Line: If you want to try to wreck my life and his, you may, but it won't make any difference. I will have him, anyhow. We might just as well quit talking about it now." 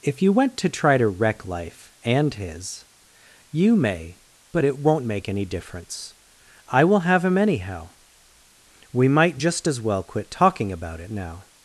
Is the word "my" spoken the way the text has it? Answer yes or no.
no